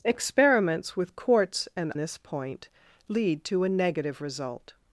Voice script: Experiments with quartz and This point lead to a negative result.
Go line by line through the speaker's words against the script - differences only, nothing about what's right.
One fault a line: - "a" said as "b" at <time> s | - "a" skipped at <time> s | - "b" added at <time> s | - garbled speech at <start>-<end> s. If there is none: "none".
none